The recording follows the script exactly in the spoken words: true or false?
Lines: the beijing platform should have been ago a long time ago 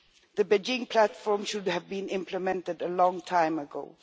false